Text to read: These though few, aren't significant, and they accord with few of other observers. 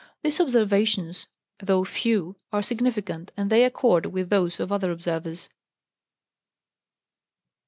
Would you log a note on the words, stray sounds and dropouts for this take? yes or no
yes